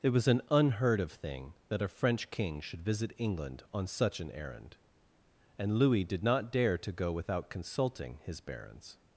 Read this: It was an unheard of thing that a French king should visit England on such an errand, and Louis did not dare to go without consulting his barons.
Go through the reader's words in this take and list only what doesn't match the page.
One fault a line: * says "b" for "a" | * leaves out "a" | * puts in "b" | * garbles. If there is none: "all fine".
all fine